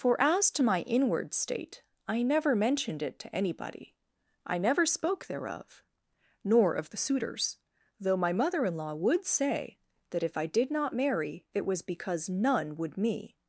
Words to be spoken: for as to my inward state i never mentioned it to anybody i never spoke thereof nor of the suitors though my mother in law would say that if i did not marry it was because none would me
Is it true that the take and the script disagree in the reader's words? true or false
false